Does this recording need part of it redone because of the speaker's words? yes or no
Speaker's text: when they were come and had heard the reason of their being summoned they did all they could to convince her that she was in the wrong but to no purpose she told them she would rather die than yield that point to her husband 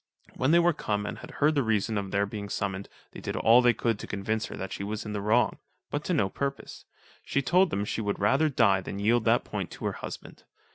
no